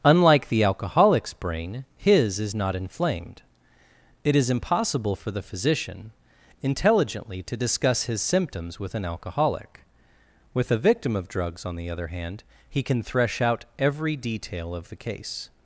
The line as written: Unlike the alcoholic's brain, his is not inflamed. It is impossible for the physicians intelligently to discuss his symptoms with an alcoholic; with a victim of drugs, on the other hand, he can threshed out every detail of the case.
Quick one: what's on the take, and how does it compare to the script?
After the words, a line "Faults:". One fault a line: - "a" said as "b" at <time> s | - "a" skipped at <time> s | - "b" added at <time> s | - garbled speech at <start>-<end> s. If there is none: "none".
Unlike the alcoholic's brain, his is not inflamed. It is impossible for the physician intelligently to discuss his symptoms with an alcoholic; with a victim of drugs, on the other hand, he can thresh out every detail of the case.
Faults:
- "physicians" said as "physician" at 5.4 s
- "threshed" said as "thresh" at 13.0 s